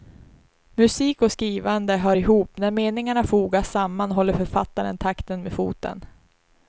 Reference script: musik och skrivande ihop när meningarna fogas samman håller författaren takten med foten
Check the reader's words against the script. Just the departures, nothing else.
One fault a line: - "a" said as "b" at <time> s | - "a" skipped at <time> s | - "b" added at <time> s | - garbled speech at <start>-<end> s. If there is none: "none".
- "hör" added at 2.0 s